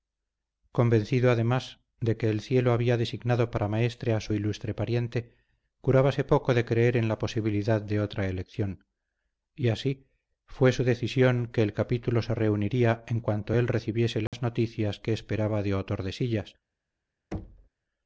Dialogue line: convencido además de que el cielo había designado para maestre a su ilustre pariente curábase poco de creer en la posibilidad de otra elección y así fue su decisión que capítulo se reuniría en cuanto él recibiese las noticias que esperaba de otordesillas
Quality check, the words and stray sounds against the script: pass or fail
fail